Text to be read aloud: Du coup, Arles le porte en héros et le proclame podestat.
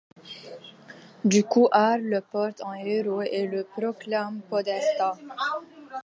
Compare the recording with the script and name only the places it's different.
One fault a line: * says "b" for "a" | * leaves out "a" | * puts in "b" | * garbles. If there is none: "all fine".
all fine